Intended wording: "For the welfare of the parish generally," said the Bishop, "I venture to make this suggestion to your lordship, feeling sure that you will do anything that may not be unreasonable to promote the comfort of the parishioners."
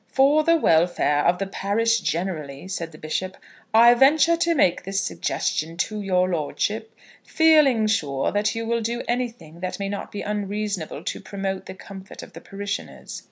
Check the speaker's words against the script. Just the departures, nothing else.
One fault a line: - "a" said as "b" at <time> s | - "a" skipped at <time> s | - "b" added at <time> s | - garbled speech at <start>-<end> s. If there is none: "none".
none